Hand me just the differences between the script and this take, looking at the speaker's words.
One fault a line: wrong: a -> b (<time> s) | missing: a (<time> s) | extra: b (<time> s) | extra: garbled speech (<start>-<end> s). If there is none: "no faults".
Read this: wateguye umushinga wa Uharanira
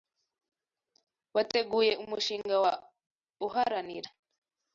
no faults